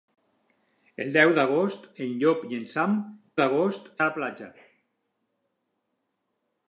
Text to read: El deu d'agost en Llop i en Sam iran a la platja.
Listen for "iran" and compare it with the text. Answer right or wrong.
wrong